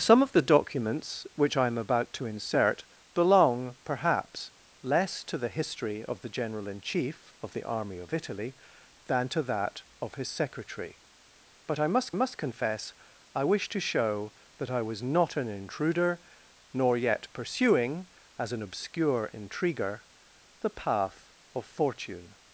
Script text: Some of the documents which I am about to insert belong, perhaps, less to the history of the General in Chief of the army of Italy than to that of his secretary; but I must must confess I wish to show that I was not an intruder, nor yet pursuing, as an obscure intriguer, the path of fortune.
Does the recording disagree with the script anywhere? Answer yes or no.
no